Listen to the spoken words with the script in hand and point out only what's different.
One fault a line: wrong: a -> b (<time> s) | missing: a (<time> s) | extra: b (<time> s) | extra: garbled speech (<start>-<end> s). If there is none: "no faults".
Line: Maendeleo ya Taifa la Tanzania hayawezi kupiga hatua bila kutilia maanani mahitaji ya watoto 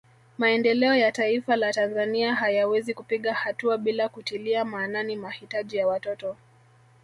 no faults